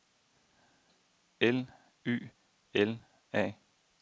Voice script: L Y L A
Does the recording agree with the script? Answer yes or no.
yes